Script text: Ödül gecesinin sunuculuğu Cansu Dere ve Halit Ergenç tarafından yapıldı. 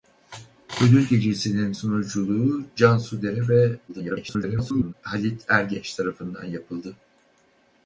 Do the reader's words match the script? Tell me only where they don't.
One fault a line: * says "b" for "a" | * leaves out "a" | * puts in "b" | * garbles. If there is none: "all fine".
* garbles